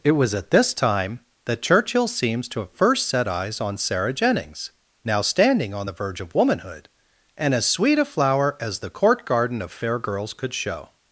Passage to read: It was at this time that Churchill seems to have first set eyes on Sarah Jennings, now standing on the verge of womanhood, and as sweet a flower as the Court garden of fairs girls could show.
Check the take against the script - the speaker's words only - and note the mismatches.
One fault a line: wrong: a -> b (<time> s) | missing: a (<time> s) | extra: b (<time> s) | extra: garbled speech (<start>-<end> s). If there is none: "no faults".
wrong: fairs -> fair (9.7 s)